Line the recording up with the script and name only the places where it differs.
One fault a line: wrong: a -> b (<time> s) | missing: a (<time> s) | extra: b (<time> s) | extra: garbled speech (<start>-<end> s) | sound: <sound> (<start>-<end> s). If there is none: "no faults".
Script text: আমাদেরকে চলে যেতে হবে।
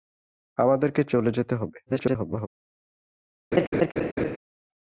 extra: garbled speech (1.9-2.5 s)
sound: laugh (3.5-4.4 s)